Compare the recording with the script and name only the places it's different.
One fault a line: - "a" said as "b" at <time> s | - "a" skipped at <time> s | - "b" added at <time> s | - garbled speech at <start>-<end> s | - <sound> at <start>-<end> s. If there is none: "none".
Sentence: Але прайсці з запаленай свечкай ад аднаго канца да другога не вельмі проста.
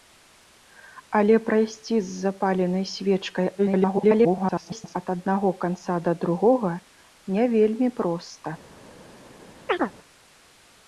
- garbled speech at 3.6-5.0 s
- chirp at 9.7-9.9 s